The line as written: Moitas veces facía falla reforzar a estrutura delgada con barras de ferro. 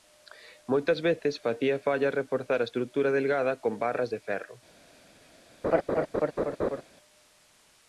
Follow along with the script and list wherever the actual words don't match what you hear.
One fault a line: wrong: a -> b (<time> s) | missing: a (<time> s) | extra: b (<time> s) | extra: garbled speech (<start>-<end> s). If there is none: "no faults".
no faults